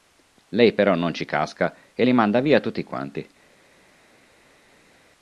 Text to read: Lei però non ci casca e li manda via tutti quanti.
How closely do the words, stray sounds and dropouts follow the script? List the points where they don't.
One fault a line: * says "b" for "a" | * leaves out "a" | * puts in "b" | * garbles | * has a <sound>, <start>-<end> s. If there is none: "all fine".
all fine